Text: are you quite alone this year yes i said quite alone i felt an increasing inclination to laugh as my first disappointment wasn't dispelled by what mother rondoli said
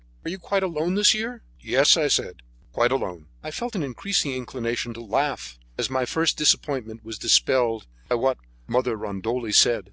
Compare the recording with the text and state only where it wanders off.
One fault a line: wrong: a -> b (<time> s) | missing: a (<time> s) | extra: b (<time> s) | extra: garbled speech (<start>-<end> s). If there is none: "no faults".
wrong: wasn't -> was (7.0 s)